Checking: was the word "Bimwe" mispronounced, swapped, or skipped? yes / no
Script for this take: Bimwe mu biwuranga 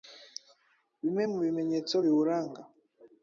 no